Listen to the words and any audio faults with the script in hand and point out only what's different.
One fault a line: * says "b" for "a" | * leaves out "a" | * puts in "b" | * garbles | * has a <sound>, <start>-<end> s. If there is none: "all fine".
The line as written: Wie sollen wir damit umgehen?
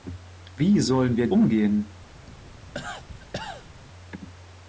* leaves out "damit"
* has a cough, 2.3-3.7 s